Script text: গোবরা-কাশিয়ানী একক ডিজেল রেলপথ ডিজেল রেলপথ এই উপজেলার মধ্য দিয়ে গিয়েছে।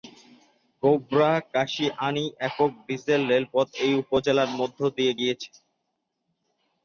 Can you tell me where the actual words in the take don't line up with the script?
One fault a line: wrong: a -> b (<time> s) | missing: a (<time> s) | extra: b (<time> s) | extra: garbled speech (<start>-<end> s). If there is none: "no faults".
missing: ডিজেল রেলপথ (3.7 s)